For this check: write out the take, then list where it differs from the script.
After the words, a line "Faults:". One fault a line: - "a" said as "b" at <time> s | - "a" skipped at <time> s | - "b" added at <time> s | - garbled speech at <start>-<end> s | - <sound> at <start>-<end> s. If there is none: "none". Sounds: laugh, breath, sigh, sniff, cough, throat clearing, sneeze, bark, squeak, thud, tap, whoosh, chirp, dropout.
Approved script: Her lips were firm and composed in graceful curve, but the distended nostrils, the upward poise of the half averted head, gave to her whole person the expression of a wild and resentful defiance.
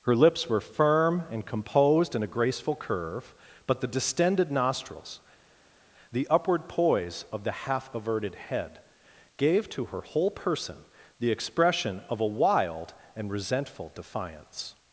Her lips were firm and composed in a graceful curve, but the distended nostrils, the upward poise of the half averted head, gave to her whole person the expression of a wild and resentful defiance.
Faults:
- "a" added at 2.2 s